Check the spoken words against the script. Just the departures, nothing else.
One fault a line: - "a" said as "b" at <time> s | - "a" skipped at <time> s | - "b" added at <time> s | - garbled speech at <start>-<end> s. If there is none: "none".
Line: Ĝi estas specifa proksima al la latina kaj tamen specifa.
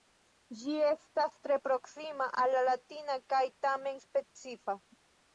- "specifa" said as "tre" at 1.4 s